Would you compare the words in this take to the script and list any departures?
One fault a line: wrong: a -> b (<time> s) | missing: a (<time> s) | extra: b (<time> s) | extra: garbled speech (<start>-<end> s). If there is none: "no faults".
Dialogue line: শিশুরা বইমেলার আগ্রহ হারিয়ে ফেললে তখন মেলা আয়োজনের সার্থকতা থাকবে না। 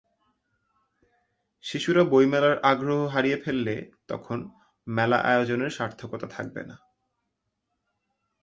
no faults